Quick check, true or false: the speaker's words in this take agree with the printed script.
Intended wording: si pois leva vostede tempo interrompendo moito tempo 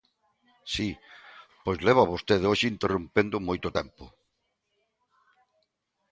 false